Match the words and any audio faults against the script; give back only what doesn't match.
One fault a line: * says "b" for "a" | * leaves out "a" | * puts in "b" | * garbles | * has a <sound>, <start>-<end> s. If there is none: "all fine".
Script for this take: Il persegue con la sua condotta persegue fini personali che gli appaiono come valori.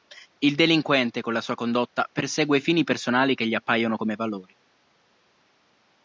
* says "delinquente" for "persegue"